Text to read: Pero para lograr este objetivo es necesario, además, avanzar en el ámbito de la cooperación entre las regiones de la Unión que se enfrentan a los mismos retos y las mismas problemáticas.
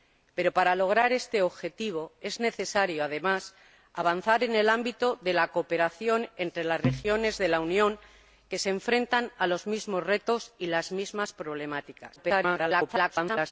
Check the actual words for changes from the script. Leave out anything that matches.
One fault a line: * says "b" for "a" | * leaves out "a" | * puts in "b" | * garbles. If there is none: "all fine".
* garbles